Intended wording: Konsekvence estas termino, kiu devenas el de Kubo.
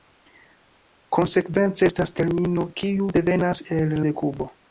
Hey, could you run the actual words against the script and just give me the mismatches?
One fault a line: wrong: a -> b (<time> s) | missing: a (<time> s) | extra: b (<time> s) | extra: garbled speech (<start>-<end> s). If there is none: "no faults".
no faults